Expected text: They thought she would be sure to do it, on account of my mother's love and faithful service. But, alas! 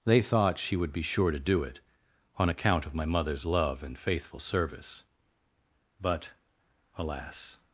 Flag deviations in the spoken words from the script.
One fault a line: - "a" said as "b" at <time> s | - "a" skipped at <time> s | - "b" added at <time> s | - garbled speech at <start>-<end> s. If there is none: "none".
none